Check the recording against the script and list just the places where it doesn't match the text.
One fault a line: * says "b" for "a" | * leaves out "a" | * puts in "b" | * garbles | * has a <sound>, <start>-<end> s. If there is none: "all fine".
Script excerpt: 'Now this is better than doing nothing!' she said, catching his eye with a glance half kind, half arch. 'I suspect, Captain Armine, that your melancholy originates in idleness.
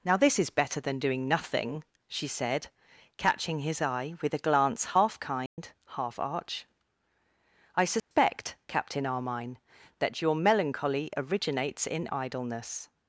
* has a dropout, 5.5-5.6 s
* has a dropout, 8.0-8.1 s